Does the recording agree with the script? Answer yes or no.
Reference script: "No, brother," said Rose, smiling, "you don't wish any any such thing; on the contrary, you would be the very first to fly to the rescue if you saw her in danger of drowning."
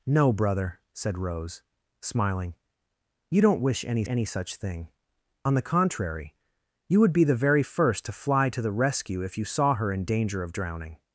yes